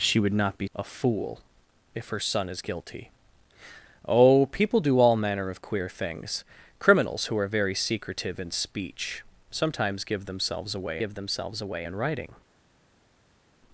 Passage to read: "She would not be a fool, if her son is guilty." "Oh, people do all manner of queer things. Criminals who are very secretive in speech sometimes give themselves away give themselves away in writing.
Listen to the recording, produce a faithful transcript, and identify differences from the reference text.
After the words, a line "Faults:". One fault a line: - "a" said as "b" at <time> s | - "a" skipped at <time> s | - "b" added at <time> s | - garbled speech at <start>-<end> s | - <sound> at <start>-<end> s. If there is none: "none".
"She would not be a fool, if her son is guilty." "Oh, people do all manner of queer things. Criminals who are very secretive in speech sometimes give themselves away give themselves away in writing.
Faults:
none